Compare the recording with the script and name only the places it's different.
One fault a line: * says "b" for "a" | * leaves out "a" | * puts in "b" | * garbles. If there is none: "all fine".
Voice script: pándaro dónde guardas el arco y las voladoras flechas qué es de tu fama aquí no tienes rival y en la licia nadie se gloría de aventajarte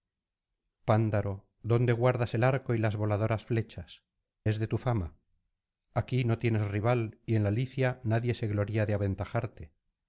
* leaves out "qué"